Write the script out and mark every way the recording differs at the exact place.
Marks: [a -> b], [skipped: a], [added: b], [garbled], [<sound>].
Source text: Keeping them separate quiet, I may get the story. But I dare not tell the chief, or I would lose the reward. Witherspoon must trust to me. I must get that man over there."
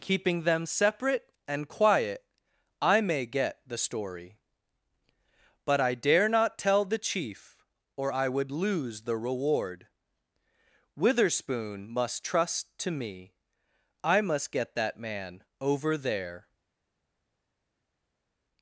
Keeping them separate [added: and] quiet, I may get the story. But I dare not tell the chief, or I would lose the reward. Witherspoon must trust to me. I must get that man over there."